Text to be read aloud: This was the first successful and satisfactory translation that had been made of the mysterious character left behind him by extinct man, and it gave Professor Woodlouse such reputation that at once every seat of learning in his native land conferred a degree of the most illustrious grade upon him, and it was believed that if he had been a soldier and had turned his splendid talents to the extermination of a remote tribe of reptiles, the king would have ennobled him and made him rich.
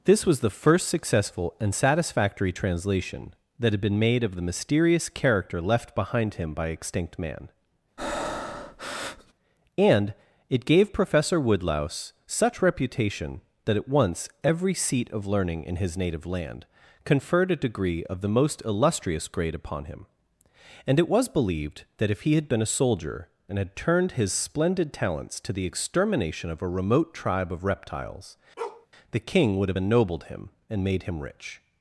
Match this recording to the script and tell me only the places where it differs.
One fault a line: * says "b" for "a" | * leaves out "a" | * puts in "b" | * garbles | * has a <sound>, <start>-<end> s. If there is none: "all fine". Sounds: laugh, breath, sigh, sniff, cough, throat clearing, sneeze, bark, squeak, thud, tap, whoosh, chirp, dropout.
* has a breath, 8.0-9.3 s
* has a bark, 28.6-28.9 s